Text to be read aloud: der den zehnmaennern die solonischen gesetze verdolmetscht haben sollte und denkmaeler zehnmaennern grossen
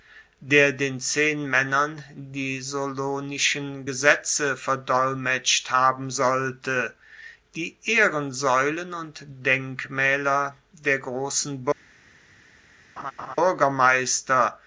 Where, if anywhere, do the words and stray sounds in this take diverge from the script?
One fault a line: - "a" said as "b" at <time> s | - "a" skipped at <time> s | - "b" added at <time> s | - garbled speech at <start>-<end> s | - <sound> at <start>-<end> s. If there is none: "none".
- "die ehrensaeulen" added at 7.6 s
- "zehnmaennern" said as "der" at 10.8 s
- laugh at 13.0-13.4 s